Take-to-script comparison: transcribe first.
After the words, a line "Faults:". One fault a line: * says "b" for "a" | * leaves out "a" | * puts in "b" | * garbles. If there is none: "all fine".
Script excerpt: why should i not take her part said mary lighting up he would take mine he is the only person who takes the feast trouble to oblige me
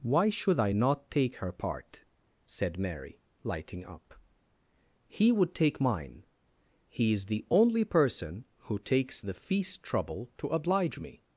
why should i not take her part said mary lighting up he would take mine he is the only person who takes the feast trouble to oblige me
Faults:
all fine